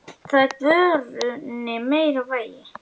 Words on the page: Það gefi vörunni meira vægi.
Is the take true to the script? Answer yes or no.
no